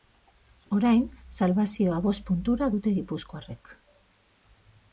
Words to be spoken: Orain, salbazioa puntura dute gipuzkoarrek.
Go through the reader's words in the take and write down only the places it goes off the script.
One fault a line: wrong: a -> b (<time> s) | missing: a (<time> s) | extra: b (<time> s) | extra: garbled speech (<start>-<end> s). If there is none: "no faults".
extra: bost (2.1 s)